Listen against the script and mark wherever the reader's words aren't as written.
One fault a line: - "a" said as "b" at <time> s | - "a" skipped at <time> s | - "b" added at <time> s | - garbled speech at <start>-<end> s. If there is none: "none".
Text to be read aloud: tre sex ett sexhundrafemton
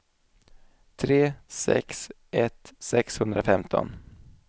none